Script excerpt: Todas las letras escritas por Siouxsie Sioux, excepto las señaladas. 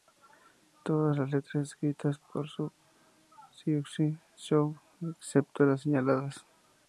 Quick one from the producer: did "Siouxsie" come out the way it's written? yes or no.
yes